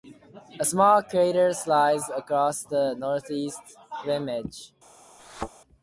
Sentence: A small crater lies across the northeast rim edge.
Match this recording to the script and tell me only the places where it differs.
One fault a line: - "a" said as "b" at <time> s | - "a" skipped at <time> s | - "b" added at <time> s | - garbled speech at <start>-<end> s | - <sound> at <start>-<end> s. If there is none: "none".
- thud at 5.2-5.5 s